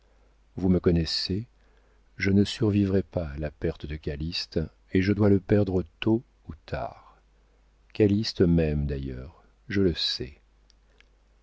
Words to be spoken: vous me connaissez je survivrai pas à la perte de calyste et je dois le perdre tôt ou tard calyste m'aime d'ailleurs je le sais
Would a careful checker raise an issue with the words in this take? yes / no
yes